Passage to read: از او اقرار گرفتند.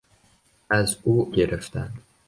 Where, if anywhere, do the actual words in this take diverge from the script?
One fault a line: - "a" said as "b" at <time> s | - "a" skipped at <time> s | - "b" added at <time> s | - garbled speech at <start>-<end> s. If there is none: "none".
- "اقرار" skipped at 1.3 s